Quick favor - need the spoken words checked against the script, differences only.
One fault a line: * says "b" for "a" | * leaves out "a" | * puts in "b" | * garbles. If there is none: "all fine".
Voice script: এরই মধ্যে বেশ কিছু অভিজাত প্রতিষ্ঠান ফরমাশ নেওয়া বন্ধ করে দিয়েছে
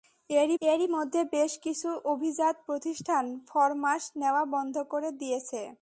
* puts in "এরই"